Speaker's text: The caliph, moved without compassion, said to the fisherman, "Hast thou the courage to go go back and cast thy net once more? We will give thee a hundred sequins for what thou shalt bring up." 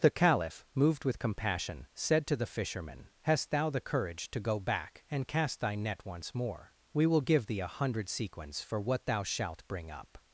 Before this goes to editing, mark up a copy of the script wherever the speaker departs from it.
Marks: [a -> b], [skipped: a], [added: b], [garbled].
The caliph, moved [without -> with] compassion, said to the fisherman, "Hast thou the courage to go [skipped: go] back and cast thy net once more? We will give thee a hundred sequins for what thou shalt bring up."